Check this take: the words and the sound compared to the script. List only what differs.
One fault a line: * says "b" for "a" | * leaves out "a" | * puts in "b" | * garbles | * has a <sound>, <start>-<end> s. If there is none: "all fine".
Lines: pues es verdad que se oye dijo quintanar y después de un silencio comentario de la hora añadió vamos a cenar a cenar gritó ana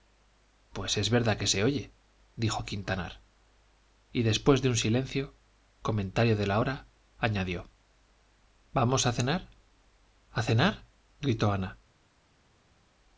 all fine